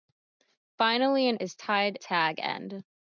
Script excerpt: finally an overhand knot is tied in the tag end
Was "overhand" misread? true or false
true